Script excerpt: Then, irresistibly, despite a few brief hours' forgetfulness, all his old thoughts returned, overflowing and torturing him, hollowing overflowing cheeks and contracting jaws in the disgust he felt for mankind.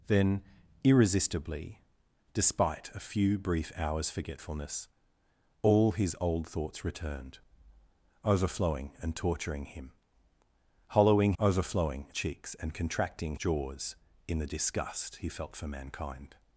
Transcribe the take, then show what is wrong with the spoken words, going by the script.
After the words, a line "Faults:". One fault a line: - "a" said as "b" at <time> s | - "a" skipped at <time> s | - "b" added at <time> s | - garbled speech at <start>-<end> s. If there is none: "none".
Then, irresistibly, despite a few brief hours' forgetfulness, all his old thoughts returned, overflowing and torturing him, hollowing overflowing cheeks and contracting jaws in the disgust he felt for mankind.
Faults:
none